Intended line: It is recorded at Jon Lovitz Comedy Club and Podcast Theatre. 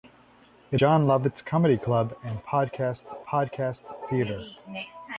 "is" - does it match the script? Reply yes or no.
no